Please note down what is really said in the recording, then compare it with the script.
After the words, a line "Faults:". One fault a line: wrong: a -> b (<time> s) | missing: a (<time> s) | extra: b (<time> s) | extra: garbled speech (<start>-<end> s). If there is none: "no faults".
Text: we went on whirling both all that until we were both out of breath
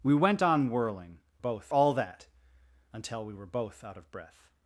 we went on whirling both all that until we were both out of breath
Faults:
no faults